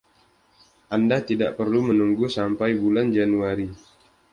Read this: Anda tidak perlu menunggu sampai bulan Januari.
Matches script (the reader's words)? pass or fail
pass